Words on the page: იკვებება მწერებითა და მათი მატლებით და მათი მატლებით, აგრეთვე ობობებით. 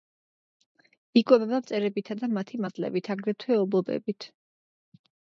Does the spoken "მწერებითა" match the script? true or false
true